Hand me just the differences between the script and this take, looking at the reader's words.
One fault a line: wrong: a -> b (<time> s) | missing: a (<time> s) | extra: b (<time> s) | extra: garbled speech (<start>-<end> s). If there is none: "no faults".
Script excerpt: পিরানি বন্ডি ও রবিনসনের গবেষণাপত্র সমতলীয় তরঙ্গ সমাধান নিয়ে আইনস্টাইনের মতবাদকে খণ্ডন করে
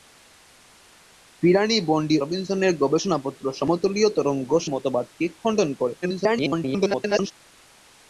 missing: ও (2.2 s)
missing: সমাধান নিয়ে আইনস্টাইনের (4.5 s)
extra: garbled speech (6.0-7.3 s)